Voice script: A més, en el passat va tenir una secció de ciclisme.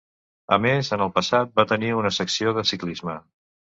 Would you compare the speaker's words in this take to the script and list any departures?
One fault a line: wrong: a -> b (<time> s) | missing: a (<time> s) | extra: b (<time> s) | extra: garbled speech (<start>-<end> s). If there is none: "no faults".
no faults